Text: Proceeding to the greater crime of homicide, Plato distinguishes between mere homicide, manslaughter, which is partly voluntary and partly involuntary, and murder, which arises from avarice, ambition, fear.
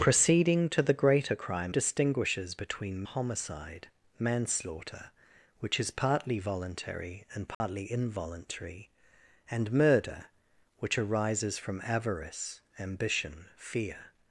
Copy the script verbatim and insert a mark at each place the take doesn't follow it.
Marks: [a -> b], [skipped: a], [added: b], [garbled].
Proceeding to the greater crime [skipped: of homicide, Plato] distinguishes between [skipped: mere] homicide, manslaughter, which is partly voluntary and partly involuntary, and murder, which arises from avarice, ambition, fear.